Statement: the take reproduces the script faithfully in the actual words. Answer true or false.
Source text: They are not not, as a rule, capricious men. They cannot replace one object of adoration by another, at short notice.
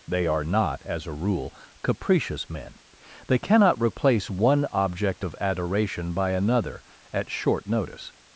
false